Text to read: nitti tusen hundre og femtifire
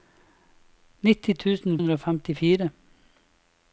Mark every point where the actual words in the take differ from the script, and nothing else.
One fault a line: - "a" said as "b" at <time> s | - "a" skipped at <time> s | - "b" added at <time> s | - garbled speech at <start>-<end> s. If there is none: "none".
none